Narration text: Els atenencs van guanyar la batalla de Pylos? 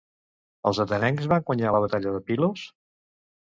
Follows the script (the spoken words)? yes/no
yes